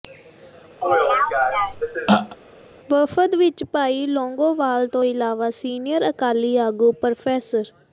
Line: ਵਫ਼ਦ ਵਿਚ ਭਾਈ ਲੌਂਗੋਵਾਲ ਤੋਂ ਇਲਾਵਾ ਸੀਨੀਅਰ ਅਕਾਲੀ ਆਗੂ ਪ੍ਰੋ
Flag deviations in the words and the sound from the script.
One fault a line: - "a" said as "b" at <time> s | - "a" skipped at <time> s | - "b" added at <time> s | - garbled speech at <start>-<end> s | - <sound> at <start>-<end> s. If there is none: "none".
- throat clearing at 0.8-2.4 s